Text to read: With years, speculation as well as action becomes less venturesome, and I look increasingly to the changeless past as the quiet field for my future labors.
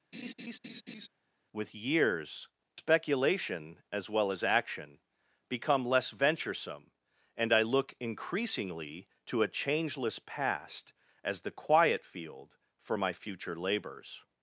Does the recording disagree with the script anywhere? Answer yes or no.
yes